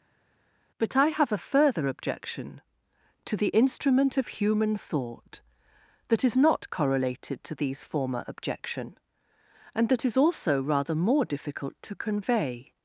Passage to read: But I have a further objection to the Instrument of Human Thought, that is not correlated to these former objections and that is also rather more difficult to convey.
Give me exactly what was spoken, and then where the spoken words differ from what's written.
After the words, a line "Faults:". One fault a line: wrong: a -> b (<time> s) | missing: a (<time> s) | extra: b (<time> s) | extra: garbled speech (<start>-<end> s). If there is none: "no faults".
But I have a further objection to the Instrument of Human Thought, that is not correlated to these former objection and that is also rather more difficult to convey.
Faults:
wrong: objections -> objection (8.3 s)